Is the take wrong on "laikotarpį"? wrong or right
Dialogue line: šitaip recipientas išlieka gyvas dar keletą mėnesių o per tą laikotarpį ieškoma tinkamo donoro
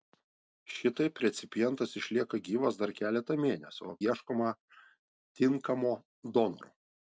wrong